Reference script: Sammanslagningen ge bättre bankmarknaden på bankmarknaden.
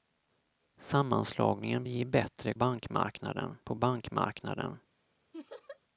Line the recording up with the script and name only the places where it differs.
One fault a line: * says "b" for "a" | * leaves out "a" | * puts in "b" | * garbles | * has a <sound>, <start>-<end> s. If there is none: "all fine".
* has a laugh, 5.3-5.8 s